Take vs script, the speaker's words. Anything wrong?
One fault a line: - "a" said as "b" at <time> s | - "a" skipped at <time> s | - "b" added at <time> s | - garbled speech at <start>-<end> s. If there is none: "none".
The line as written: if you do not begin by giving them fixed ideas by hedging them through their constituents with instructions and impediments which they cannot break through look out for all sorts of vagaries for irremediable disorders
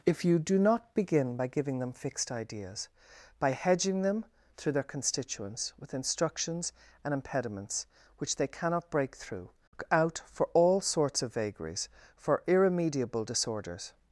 none